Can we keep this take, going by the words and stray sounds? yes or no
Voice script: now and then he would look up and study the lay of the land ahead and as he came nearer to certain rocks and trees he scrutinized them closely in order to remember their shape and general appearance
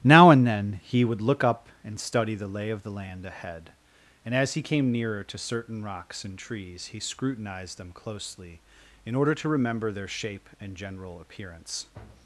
yes